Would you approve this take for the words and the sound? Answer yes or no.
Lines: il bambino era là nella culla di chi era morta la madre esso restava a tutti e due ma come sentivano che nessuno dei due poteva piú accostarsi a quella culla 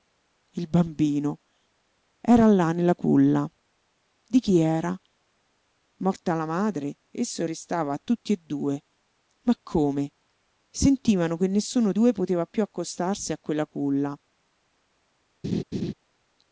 no